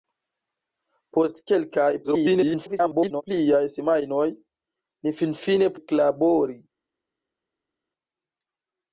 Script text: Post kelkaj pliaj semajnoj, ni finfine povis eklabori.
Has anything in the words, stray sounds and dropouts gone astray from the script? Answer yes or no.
yes